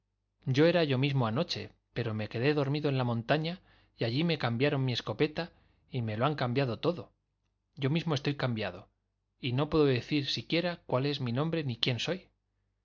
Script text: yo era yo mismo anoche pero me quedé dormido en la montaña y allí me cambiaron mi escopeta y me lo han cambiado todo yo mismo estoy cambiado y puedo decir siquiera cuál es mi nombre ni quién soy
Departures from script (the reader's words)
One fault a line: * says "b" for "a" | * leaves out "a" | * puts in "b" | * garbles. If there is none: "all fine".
* puts in "no"